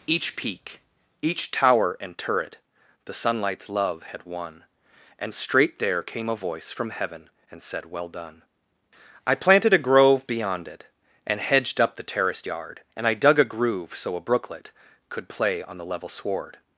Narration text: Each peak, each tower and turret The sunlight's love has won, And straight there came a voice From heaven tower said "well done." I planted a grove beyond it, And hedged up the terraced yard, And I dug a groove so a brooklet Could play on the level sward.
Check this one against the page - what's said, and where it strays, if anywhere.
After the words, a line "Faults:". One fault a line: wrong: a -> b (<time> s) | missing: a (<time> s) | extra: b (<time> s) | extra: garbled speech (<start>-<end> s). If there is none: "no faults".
Each peak, each tower and turret The sunlight's love had won, And straight there came a voice From heaven and said "well done." I planted a grove beyond it, And hedged up the terraced yard, And I dug a groove so a brooklet Could play on the level sward.
Faults:
wrong: has -> had (4.0 s)
wrong: tower -> and (7.5 s)